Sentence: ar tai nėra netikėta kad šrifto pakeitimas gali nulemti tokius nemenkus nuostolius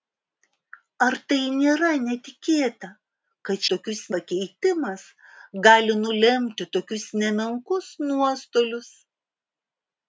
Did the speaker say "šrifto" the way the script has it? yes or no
no